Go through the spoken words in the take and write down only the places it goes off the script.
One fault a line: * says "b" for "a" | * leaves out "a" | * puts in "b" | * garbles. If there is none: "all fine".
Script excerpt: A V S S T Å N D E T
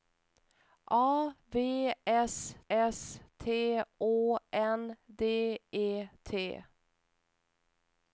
all fine